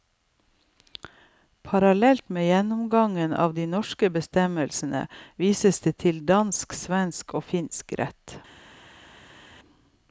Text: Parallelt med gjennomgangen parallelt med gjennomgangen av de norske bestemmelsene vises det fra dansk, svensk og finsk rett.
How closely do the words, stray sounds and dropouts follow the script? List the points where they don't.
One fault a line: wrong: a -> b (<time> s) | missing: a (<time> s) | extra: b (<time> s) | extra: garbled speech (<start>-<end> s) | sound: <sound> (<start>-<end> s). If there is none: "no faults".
missing: parallelt med gjennomgangen (3.3 s)
wrong: fra -> til (6.1 s)